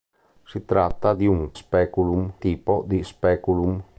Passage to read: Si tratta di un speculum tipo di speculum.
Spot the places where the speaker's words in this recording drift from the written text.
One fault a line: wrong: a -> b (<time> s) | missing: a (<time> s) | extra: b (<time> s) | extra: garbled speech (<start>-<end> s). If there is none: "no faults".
no faults